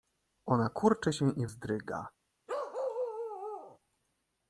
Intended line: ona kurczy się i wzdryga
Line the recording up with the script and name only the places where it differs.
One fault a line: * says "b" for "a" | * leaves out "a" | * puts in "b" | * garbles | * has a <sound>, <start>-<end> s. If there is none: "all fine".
* has a bark, 2.5-3.8 s